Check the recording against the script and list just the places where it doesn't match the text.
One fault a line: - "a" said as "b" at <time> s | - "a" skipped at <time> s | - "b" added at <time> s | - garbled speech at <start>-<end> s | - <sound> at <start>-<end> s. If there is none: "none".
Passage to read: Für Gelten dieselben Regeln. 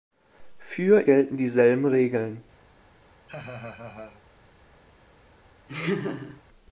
- laugh at 3.3-4.2 s
- laugh at 5.7-6.4 s